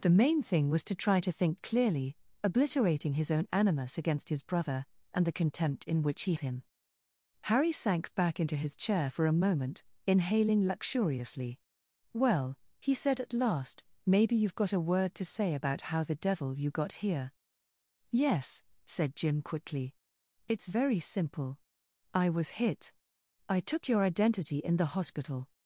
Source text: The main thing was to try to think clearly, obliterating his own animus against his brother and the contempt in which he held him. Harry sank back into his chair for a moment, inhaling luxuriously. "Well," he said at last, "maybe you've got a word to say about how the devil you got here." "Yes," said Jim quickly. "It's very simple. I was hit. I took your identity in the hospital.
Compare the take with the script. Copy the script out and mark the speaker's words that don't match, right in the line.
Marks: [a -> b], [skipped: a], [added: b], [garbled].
The main thing was to try to think clearly, obliterating his own animus against his brother and the contempt in which he [skipped: held] him. Harry sank back into his chair for a moment, inhaling luxuriously. "Well," he said at last, "maybe you've got a word to say about how the devil you got here." "Yes," said Jim quickly. "It's very simple. I was hit. I took your identity in the hospital.